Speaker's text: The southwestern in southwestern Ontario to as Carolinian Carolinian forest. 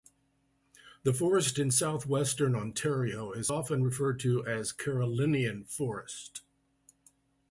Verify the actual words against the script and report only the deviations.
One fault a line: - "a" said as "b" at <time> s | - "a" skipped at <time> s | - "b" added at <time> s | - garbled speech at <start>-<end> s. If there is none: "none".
- "southwestern" said as "forest" at 1.1 s
- "is often referred" added at 3.3 s
- "Carolinian" skipped at 5.6 s